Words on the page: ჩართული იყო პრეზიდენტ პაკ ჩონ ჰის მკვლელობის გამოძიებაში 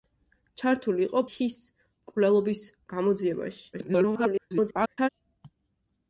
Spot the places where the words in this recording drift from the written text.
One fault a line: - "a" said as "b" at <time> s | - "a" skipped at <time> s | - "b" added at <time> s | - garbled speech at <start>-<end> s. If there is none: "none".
- "პრეზიდენტ პაკ ჩონ" skipped at 1.2 s
- garbled speech at 3.7-5.1 s